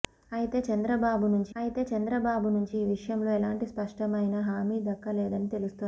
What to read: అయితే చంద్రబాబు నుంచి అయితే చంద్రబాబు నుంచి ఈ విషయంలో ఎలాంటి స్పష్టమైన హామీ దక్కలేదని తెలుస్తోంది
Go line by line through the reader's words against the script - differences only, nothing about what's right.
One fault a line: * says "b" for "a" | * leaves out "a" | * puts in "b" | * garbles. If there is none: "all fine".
all fine